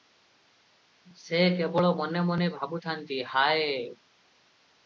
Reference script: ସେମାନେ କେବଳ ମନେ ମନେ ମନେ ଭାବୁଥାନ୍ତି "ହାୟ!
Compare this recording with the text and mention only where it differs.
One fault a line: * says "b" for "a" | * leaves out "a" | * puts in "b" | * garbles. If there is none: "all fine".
* says "ସେ" for "ସେମାନେ"
* leaves out "ମନେ"